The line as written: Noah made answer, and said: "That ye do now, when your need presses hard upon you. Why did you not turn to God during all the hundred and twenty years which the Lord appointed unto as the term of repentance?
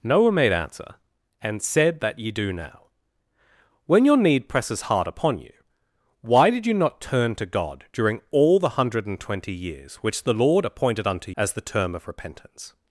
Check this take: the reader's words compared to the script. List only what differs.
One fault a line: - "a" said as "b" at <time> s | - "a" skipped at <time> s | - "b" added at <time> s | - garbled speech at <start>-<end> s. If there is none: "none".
none